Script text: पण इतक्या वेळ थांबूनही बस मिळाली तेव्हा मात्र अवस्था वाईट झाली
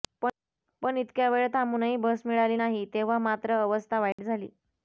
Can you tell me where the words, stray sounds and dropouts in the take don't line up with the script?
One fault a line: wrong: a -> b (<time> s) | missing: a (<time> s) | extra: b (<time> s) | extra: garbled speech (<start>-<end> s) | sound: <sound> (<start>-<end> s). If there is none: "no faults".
extra: नाही (2.5 s)
sound: dropout (4.1-4.2 s)